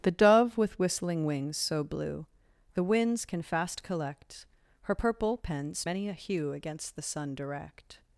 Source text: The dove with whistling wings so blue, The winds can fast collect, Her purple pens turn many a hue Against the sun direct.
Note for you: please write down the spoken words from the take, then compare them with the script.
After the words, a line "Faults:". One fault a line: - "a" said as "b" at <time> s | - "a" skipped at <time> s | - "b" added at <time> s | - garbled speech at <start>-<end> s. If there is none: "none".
The dove with whistling wings so blue, The winds can fast collect, Her purple pens many a hue Against the sun direct.
Faults:
- "turn" skipped at 5.8 s